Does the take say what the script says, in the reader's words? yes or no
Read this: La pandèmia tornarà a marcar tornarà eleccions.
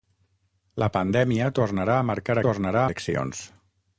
yes